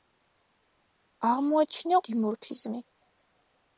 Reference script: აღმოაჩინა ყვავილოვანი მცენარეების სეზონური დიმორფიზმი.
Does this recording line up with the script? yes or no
no